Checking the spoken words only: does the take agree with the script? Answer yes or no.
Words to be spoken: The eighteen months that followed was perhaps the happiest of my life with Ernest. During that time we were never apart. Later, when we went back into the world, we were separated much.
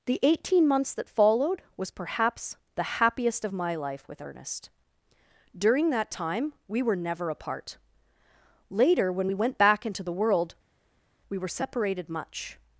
yes